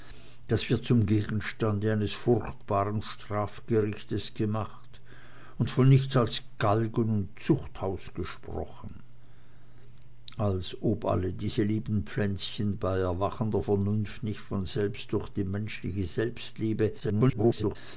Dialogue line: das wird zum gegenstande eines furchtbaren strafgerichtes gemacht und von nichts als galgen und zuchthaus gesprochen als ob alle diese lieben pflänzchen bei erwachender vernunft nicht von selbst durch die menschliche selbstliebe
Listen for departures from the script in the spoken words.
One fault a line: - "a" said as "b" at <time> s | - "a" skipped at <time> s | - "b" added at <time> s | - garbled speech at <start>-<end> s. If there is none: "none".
- garbled speech at 17.0-17.8 s